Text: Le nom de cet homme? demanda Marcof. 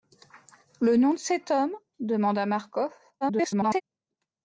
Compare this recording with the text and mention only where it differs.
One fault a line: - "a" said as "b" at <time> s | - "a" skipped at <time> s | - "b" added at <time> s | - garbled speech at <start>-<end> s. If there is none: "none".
- garbled speech at 3.2-3.8 s